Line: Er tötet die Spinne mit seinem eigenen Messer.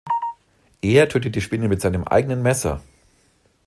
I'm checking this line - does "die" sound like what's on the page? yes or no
yes